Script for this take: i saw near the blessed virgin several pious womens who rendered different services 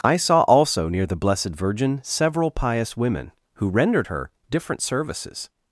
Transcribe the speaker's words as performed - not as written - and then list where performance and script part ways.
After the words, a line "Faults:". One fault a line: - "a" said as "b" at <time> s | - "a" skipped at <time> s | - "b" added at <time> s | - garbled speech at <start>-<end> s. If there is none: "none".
i saw also near the blessed virgin several pious women who rendered her different services
Faults:
- "also" added at 0.4 s
- "womens" said as "women" at 3.0 s
- "her" added at 4.1 s